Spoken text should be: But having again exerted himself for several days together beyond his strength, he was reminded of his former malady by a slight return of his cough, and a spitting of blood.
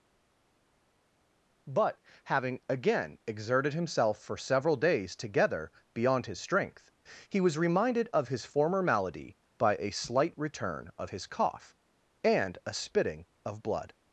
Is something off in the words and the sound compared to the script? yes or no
no